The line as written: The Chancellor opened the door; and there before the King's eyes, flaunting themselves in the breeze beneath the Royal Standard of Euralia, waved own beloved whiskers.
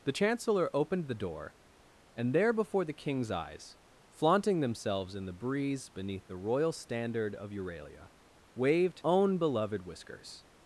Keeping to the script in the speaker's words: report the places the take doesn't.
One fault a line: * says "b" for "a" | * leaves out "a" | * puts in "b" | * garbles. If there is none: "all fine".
all fine